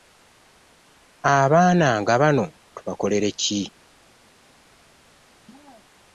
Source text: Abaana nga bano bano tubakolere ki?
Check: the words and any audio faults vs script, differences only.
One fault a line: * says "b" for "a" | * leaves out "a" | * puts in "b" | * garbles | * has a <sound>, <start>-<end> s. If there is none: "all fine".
* leaves out "bano"